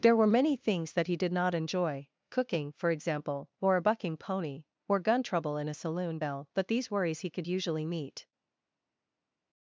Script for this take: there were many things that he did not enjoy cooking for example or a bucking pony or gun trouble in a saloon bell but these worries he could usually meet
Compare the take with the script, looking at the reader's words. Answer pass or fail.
pass